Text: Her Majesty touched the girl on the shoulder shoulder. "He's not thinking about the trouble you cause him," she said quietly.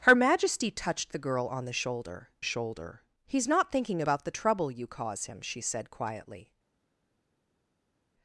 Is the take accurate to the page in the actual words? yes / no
yes